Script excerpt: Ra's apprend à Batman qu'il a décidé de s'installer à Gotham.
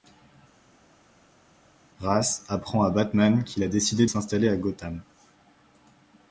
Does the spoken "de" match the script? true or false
false